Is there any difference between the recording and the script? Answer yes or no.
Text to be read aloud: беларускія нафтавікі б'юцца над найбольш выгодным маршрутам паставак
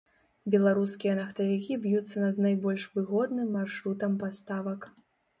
no